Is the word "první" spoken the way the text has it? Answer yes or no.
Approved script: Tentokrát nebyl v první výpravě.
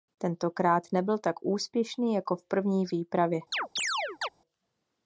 yes